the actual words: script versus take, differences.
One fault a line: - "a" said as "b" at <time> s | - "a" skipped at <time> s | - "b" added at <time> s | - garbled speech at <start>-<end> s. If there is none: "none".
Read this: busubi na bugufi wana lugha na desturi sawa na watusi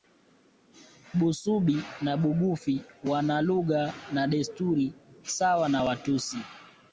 none